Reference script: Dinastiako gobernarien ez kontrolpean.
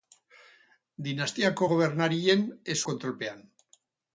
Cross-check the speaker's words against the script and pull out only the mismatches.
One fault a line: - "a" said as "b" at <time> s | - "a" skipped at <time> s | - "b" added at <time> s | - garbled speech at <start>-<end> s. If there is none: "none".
none